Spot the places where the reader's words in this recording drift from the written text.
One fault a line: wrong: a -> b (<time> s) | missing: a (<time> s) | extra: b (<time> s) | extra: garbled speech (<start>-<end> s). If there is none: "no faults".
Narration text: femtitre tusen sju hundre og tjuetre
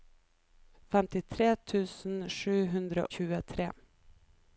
missing: og (3.0 s)